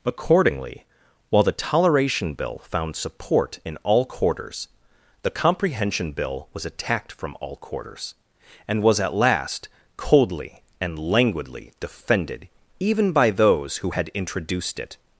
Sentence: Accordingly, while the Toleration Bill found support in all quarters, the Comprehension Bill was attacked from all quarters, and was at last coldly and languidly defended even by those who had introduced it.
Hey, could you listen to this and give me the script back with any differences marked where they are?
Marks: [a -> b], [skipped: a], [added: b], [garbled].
Accordingly, while the Toleration Bill found support in all quarters, the Comprehension Bill was attacked from all quarters, and was at last coldly and languidly defended even by those who had introduced it.